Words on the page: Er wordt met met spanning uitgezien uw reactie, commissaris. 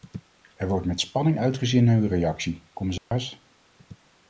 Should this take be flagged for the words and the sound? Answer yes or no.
yes